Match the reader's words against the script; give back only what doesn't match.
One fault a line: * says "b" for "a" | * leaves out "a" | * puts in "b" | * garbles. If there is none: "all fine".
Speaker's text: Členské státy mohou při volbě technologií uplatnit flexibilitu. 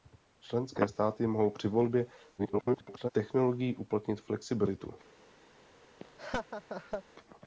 * garbles